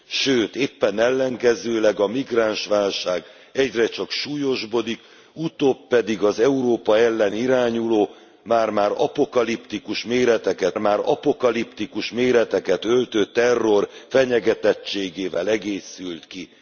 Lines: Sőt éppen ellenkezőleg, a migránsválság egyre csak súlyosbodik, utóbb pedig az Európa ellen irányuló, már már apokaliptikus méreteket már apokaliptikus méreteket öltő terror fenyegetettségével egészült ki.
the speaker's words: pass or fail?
pass